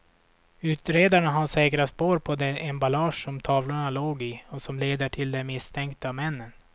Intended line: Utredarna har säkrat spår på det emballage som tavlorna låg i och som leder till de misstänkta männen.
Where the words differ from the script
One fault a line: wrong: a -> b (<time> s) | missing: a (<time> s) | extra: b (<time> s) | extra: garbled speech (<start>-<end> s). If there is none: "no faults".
no faults